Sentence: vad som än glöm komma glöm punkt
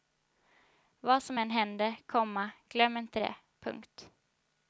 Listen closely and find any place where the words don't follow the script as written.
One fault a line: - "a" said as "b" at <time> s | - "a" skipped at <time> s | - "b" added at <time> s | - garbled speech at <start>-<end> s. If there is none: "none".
- "glöm" said as "händer" at 1.5 s
- "inte det" added at 3.0 s